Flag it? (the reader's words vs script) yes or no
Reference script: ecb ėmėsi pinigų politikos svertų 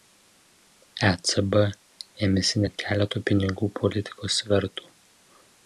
yes